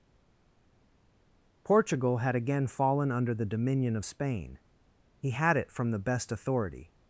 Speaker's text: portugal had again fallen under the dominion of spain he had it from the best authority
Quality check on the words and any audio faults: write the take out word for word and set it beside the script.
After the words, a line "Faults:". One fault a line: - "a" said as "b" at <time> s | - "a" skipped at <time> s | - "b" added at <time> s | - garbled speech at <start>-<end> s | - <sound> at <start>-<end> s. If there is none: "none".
portugal had again fallen under the dominion of spain he had it from the best authority
Faults:
none